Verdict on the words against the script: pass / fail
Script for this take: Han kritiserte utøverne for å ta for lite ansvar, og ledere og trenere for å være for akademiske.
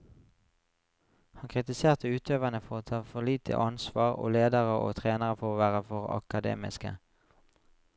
pass